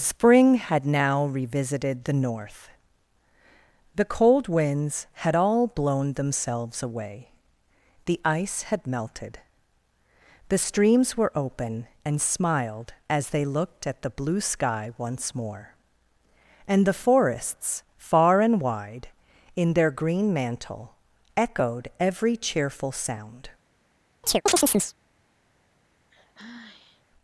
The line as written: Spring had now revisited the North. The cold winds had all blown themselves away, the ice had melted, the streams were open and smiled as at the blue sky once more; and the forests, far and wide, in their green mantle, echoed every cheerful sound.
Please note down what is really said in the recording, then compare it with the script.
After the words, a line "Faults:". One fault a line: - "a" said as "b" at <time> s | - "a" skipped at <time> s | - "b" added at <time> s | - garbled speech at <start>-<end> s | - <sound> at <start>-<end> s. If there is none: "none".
Spring had now revisited the North. The cold winds had all blown themselves away, the ice had melted, the streams were open and smiled as they looked at the blue sky once more; and the forests, far and wide, in their green mantle, echoed every cheerful sound.
Faults:
- "they looked" added at 13.3 s
- chirp at 24.2-25.0 s
- sigh at 26.1-27.0 s